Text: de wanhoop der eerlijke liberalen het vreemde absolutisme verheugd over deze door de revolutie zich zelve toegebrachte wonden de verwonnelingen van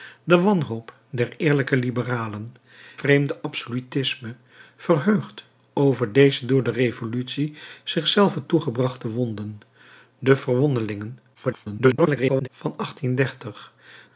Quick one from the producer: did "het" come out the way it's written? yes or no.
no